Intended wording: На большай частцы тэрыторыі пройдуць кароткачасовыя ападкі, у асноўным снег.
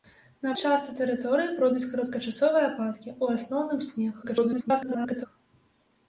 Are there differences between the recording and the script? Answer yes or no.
yes